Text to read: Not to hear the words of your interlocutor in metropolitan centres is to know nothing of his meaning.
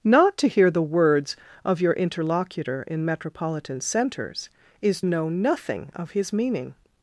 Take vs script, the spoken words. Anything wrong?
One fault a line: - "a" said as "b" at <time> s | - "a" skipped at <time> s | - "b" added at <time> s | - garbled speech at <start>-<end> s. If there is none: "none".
- "to" skipped at 5.0 s